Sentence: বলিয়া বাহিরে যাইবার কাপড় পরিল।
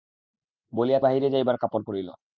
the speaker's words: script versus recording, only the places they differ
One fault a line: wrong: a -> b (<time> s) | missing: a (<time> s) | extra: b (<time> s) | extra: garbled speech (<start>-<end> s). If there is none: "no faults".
no faults